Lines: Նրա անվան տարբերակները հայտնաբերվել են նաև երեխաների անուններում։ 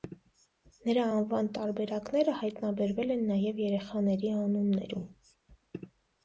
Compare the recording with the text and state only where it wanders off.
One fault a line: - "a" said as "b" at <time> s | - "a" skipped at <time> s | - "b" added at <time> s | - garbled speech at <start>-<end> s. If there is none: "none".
none